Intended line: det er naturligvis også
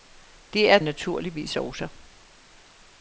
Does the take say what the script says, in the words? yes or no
yes